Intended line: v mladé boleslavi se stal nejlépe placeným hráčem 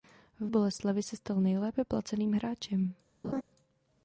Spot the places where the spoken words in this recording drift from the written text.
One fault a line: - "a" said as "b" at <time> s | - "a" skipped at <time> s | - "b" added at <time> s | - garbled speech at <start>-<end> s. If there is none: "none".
- "mladé" skipped at 0.5 s